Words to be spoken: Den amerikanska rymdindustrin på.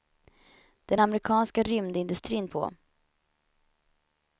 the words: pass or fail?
pass